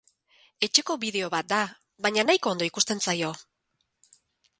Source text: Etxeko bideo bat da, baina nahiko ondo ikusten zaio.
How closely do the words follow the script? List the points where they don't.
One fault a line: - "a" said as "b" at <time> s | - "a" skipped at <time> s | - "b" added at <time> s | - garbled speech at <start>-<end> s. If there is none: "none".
none